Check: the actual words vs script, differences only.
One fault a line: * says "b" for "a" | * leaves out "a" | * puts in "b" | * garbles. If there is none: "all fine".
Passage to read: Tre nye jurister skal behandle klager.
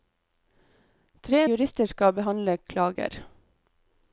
* leaves out "nye"